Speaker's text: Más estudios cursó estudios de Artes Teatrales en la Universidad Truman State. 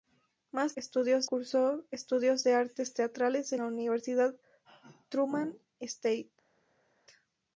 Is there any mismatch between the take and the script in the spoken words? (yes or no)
no